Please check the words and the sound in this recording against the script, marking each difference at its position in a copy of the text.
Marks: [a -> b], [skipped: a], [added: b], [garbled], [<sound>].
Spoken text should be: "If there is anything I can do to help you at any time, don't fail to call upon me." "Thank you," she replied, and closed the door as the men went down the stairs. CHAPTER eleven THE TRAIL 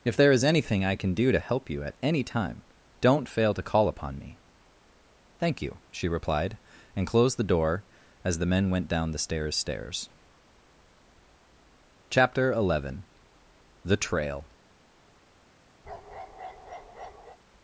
"If there is anything I can do to help you at any time, don't fail to call upon me." "Thank you," she replied, and closed the door as the men went down the stairs. [added: stairs] CHAPTER eleven THE TRAIL [bark]